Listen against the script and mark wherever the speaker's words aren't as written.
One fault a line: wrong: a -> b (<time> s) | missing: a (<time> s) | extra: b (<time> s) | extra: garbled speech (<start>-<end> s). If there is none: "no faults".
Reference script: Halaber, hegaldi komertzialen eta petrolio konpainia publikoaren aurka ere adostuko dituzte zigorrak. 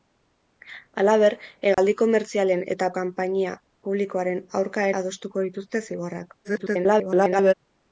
missing: petrolio (2.9 s)
missing: ere (4.9 s)
extra: garbled speech (6.4-7.5 s)